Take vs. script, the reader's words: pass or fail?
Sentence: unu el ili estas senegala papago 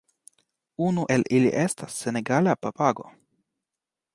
pass